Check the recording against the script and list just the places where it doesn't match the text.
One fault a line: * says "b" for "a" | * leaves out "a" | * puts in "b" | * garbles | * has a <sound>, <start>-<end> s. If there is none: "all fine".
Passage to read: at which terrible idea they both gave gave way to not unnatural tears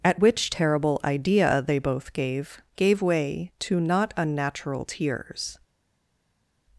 all fine